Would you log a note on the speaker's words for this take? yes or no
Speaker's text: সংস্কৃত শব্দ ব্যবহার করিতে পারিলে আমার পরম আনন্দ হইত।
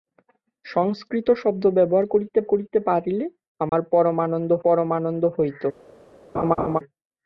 yes